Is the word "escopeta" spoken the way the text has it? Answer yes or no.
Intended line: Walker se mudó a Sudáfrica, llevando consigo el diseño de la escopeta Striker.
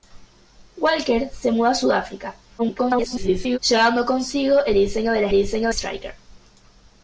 no